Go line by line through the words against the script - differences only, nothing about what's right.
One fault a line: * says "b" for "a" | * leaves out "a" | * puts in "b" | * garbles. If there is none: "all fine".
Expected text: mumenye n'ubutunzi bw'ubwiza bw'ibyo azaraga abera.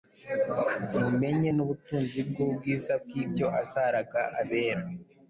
all fine